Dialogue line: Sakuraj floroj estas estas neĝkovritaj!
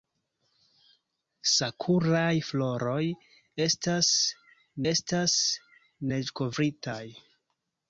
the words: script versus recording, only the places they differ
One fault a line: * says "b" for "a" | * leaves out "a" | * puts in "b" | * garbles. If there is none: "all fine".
all fine